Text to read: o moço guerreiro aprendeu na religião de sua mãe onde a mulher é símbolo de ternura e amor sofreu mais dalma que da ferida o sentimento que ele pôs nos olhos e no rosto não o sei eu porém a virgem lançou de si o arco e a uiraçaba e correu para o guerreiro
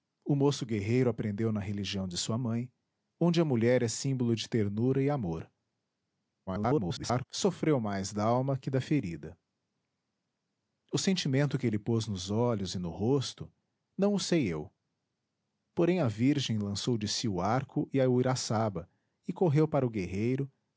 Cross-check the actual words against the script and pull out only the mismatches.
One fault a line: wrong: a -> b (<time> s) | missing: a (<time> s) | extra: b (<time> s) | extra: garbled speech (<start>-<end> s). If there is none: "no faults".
extra: garbled speech (6.5-7.3 s)